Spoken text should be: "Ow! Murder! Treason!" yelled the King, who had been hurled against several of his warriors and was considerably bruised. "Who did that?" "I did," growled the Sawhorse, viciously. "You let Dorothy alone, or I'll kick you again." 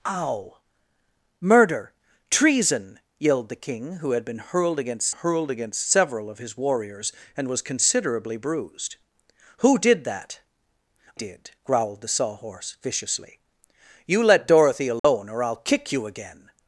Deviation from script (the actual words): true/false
true